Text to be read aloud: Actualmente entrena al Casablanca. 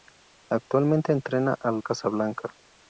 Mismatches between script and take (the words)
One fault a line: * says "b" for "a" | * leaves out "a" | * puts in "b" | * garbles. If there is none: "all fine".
all fine